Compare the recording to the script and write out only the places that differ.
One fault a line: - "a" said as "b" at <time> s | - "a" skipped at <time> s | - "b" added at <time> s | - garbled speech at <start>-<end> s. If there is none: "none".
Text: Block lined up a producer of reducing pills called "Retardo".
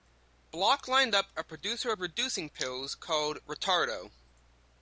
none